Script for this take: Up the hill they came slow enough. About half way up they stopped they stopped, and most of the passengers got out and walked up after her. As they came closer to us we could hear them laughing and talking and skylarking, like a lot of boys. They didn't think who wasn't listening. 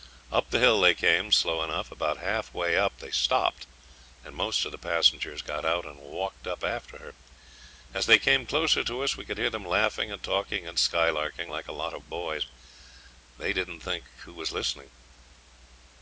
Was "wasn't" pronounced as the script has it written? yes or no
no